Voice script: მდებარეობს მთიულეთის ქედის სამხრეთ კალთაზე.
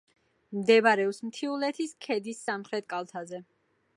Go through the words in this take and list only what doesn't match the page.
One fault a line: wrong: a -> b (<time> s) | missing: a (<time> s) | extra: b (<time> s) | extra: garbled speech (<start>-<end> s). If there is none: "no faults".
no faults